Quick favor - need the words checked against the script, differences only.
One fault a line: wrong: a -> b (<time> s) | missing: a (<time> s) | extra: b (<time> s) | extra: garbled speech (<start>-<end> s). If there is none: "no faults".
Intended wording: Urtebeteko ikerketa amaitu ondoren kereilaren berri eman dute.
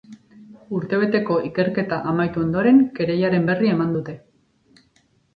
no faults